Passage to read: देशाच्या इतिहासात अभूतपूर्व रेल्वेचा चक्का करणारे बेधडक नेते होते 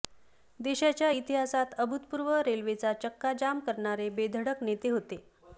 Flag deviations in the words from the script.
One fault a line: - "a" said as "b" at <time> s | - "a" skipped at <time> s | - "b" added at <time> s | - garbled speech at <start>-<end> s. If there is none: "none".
- "जाम" added at 3.4 s